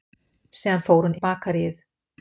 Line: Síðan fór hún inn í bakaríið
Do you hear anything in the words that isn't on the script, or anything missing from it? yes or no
yes